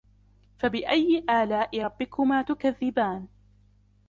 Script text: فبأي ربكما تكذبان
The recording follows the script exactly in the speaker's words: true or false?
false